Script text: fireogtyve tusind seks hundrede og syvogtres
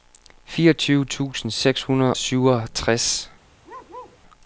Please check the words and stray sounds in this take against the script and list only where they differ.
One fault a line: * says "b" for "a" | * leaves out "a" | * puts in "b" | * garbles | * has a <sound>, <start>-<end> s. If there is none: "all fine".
* leaves out "og"
* has a bark, 3.6-4.2 s